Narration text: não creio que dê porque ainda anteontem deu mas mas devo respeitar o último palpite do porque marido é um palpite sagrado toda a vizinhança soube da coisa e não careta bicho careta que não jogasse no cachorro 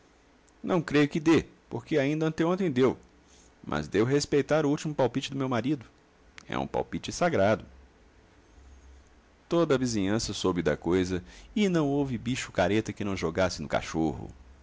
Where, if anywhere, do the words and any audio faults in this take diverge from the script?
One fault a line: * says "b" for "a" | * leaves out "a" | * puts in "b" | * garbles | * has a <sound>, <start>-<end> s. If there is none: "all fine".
* leaves out "mas"
* says "meu" for "porque"
* says "houve" for "careta"